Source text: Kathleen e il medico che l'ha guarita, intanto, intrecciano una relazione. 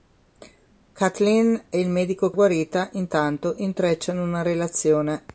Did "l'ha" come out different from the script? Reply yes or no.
yes